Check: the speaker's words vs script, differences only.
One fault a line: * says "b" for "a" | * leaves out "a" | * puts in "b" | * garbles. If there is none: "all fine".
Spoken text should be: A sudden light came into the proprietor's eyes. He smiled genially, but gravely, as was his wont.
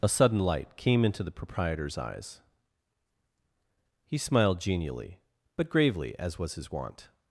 all fine